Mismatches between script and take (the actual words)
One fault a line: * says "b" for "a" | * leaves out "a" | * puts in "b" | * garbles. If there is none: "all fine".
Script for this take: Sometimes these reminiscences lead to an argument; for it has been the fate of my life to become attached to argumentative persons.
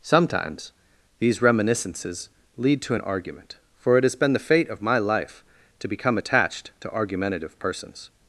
all fine